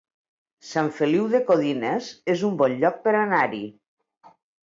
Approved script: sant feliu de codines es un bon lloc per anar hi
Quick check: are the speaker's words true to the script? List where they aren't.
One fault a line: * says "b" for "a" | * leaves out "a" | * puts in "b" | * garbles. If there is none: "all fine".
all fine